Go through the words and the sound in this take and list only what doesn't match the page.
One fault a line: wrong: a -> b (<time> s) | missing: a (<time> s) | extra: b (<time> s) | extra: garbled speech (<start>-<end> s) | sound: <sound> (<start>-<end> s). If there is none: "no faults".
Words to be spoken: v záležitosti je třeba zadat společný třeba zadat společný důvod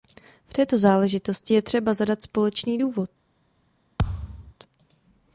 extra: této (0.5 s)
missing: třeba zadat společný (2.8 s)
sound: thud (4.0-4.5 s)